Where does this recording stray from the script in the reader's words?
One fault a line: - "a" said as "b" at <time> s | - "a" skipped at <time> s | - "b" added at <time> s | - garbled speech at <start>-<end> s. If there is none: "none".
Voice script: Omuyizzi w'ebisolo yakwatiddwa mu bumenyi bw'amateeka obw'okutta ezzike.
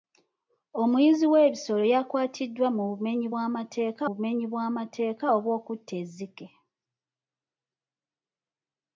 - "bumenyi bw'amateeka" added at 4.1 s